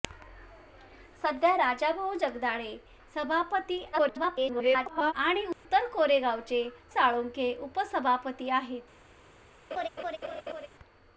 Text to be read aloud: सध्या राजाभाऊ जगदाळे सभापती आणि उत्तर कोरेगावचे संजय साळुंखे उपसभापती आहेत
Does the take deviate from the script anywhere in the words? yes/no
yes